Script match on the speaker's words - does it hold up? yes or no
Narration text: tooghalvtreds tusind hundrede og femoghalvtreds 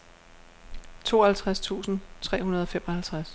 no